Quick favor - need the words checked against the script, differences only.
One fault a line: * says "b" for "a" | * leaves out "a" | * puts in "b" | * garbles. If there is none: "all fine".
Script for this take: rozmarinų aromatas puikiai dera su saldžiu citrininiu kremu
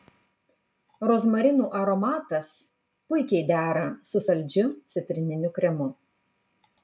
all fine